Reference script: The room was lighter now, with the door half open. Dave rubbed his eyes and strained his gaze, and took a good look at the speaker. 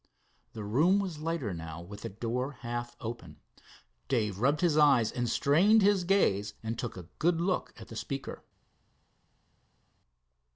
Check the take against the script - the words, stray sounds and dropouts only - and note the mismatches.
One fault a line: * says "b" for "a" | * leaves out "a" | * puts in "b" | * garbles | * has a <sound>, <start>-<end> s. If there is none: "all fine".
all fine